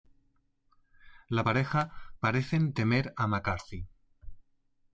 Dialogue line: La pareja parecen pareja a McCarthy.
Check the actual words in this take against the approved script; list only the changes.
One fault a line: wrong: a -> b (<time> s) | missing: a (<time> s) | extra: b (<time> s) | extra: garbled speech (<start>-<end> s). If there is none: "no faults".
wrong: pareja -> temer (2.7 s)